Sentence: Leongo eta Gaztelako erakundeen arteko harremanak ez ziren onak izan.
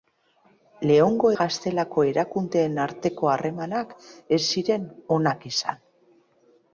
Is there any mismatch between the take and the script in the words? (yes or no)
yes